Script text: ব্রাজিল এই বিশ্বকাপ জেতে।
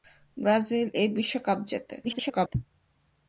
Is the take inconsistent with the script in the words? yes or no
yes